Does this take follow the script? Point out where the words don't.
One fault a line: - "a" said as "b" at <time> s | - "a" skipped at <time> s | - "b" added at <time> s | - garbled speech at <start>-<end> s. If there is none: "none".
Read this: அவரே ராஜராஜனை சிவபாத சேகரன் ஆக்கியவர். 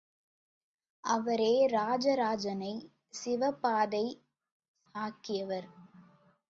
- "சேகரன்" skipped at 3.9 s